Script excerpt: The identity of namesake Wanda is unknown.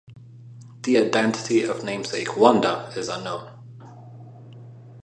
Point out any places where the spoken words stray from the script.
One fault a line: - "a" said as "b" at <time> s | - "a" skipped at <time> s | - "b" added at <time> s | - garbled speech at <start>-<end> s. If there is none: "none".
none